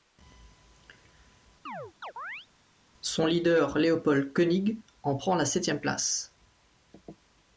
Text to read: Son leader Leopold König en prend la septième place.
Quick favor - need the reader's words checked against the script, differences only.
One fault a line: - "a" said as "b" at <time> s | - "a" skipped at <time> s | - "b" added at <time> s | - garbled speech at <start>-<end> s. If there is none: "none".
none